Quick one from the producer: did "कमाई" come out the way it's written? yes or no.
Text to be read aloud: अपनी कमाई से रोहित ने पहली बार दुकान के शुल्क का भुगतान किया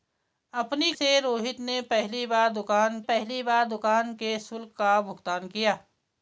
no